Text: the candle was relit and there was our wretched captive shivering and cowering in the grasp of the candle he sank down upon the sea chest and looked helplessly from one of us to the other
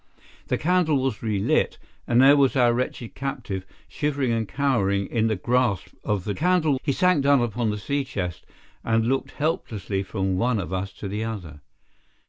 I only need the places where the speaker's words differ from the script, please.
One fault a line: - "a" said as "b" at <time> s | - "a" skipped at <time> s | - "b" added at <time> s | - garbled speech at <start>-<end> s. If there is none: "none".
none